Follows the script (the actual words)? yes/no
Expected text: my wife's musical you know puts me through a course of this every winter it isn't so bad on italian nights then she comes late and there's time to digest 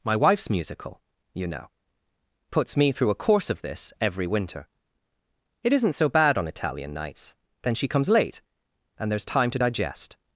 yes